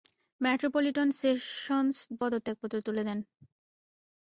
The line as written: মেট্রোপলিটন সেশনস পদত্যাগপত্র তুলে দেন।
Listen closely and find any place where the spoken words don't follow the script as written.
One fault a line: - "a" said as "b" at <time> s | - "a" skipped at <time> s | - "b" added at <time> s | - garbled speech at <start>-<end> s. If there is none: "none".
none